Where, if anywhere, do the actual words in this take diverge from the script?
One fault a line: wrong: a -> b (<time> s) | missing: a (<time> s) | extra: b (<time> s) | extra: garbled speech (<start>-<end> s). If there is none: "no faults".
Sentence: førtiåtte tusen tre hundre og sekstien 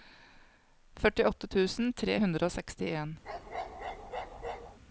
no faults